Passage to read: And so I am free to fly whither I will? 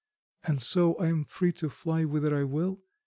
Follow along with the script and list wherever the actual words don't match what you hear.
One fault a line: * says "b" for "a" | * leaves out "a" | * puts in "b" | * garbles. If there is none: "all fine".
all fine